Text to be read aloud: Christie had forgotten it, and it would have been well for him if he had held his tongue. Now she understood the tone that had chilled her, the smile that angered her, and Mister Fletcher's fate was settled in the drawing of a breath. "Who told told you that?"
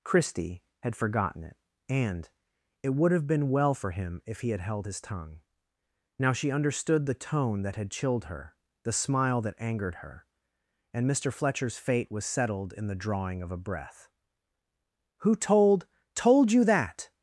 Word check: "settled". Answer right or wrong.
right